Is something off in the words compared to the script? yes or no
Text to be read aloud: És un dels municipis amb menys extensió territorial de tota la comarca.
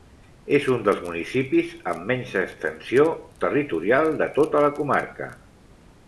no